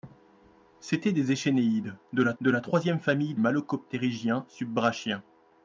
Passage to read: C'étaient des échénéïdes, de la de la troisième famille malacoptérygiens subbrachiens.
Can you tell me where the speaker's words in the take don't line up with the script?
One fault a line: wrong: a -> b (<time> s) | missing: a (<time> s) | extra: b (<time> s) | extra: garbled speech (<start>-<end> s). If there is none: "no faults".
no faults